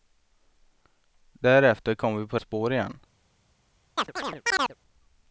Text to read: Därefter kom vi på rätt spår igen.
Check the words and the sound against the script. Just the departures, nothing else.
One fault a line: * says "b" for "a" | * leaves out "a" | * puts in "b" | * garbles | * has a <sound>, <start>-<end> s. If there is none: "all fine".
* leaves out "rätt"
* has a chirp, 4.0-4.8 s